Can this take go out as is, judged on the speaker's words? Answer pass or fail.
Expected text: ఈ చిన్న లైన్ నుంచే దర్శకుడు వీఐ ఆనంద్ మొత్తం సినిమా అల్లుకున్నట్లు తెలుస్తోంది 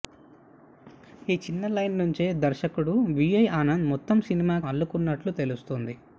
pass